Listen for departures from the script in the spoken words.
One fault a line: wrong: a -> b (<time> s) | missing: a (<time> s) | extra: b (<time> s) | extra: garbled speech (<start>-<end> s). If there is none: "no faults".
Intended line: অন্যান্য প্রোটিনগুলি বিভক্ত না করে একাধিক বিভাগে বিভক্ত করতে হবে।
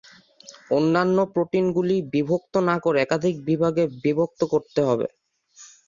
no faults